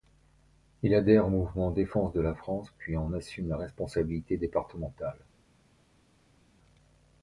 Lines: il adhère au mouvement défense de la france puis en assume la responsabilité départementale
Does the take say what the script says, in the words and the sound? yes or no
yes